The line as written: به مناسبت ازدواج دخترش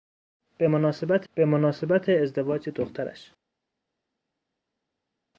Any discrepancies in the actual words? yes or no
yes